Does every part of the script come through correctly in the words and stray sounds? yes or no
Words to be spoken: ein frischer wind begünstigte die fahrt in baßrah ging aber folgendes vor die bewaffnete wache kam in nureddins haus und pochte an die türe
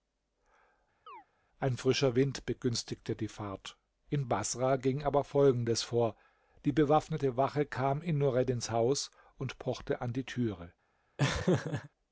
no